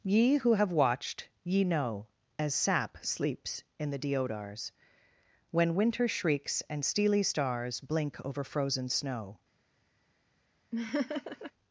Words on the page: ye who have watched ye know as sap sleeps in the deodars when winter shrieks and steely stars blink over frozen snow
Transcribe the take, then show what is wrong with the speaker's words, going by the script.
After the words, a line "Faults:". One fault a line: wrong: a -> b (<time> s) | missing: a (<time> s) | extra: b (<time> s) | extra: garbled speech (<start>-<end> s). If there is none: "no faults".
ye who have watched ye know as sap sleeps in the deodars when winter shrieks and steely stars blink over frozen snow
Faults:
no faults